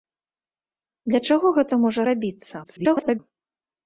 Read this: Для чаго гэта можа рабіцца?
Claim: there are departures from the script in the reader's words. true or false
true